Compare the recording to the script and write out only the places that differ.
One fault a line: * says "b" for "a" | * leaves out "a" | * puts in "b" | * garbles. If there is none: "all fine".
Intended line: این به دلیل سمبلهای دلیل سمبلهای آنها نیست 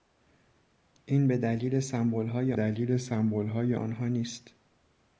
all fine